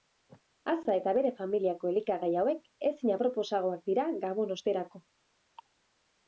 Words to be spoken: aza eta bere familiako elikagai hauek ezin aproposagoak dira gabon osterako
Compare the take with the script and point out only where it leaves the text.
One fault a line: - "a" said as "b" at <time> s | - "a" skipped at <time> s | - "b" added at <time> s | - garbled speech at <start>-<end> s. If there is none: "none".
none